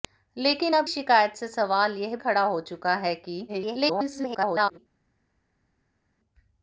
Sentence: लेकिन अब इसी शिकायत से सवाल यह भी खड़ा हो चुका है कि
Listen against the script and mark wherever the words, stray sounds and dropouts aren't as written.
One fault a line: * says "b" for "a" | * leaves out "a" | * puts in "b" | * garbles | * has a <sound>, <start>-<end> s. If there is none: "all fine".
* leaves out "इसी"
* leaves out "भी"
* garbles